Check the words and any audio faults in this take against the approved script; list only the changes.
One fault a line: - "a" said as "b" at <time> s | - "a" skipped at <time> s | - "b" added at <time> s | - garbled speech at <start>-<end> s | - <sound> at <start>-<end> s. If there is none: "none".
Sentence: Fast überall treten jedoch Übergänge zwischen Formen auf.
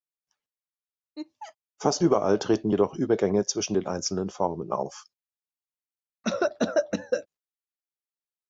- laugh at 1.2-1.6 s
- "den einzelnen" added at 3.7 s
- cough at 6.2-7.3 s